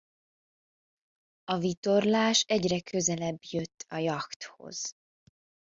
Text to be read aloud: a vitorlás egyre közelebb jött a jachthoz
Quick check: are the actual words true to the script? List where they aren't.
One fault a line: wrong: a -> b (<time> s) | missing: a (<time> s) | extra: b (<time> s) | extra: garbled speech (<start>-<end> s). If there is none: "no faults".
no faults